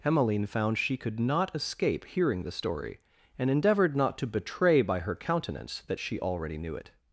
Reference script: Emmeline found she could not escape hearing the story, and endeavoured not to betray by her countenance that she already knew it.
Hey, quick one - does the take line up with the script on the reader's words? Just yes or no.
yes